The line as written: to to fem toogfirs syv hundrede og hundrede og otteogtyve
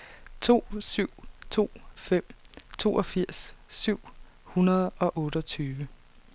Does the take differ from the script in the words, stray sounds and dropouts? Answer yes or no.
yes